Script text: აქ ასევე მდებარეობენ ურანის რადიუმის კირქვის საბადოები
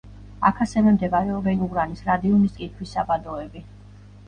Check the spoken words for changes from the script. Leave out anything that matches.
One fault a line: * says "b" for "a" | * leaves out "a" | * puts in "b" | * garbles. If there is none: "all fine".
all fine